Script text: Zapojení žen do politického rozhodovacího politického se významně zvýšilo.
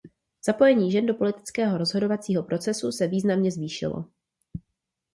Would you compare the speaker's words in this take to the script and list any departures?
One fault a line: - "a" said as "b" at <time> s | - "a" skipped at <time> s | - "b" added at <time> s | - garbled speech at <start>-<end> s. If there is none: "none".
- "politického" said as "procesu" at 2.4 s